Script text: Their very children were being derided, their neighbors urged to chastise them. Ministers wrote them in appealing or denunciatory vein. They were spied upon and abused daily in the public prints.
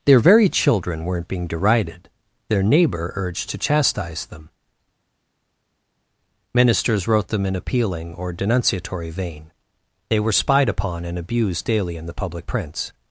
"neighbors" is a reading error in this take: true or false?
true